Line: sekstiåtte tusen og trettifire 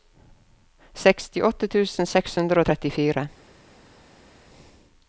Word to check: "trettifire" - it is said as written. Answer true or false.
true